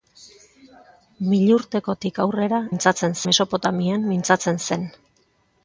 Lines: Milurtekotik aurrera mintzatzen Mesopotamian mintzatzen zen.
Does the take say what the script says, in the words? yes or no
yes